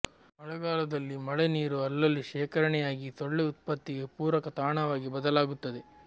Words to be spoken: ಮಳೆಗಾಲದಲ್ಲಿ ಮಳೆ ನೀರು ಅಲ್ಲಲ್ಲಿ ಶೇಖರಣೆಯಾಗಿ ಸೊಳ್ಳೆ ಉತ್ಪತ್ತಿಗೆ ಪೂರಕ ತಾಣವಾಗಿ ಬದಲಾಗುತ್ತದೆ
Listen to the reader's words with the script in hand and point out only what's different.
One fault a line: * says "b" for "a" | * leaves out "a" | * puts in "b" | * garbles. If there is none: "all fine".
all fine